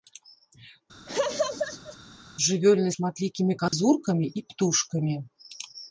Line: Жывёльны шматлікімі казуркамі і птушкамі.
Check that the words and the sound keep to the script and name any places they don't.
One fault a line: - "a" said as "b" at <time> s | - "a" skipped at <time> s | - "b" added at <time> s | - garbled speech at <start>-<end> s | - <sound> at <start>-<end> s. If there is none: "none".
- laugh at 1.1-2.0 s
- dropout at 3.7-3.7 s